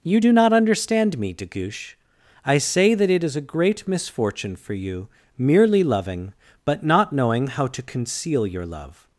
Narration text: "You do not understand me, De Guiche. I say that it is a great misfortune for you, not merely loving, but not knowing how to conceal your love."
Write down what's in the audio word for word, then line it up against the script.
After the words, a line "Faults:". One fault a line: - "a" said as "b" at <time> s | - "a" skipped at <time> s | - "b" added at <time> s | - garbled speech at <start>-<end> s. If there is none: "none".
"You do not understand me, De Guiche. I say that it is a great misfortune for you, merely loving, but not knowing how to conceal your love."
Faults:
- "not" skipped at 5.1 s